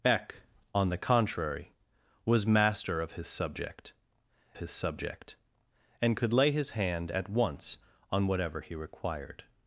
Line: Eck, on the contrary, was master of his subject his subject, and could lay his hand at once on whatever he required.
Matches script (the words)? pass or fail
pass